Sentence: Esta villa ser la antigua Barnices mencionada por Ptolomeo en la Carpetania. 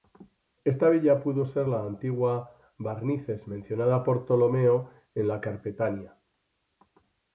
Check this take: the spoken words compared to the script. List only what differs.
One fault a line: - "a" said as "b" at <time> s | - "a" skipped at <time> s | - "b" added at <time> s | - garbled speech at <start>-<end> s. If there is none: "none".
- "pudo" added at 1.2 s